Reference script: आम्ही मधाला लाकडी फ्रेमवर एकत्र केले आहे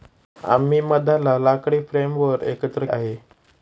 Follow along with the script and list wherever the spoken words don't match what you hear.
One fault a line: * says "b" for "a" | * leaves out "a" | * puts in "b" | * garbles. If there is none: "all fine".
* leaves out "केले"